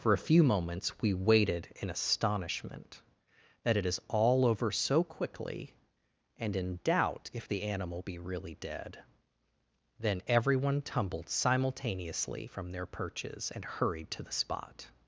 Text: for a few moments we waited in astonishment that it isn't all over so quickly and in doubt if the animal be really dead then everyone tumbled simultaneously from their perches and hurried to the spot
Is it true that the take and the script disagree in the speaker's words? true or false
true